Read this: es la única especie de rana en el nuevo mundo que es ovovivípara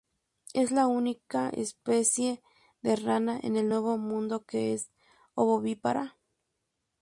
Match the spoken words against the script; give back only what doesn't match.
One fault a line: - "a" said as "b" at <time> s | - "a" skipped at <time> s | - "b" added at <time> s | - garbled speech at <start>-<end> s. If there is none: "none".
none